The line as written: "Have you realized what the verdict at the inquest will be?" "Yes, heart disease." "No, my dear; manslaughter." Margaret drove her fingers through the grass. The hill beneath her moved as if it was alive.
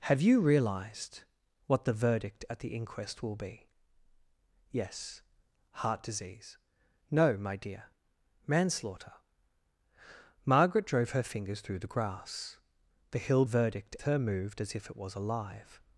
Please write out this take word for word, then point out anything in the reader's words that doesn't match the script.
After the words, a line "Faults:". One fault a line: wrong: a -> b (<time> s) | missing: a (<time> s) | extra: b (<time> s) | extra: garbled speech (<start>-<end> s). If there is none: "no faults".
"Have you realized what the verdict at the inquest will be?" "Yes, heart disease." "No, my dear; manslaughter." Margaret drove her fingers through the grass. The hill verdict her moved as if it was alive.
Faults:
wrong: beneath -> verdict (13.4 s)